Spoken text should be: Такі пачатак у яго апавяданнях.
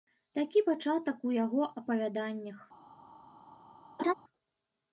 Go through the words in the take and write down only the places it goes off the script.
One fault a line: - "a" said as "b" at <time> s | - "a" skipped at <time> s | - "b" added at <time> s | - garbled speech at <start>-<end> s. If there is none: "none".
none